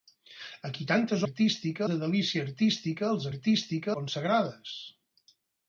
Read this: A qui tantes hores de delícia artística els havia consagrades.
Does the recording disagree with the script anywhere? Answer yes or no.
yes